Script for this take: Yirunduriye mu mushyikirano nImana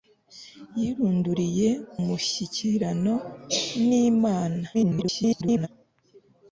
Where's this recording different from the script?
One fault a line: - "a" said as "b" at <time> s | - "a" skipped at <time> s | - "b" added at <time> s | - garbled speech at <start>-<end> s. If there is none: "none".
- "mu" skipped at 1.7 s
- garbled speech at 4.7-5.7 s